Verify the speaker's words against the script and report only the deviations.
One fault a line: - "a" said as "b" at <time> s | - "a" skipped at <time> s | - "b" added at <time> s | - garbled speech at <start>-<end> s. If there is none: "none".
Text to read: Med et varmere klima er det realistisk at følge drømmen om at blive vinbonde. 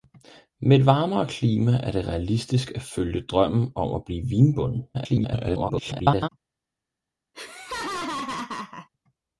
- garbled speech at 4.9-6.3 s